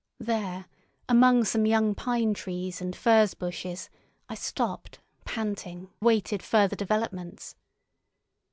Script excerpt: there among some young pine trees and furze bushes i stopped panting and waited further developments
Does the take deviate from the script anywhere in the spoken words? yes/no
yes